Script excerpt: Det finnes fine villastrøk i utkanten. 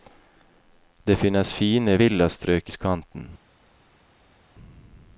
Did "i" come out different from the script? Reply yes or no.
yes